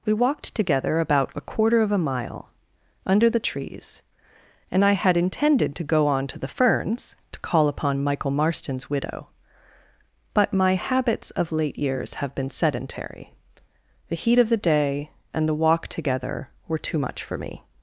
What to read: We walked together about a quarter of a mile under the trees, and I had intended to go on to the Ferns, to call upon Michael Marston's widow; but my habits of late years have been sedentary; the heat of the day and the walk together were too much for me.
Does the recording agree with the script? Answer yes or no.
yes